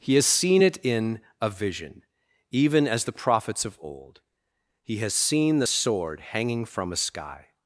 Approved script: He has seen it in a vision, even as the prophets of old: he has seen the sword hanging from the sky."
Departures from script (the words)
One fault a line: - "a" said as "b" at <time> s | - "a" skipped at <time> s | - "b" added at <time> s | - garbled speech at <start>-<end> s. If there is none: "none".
- "the" said as "a" at 6.9 s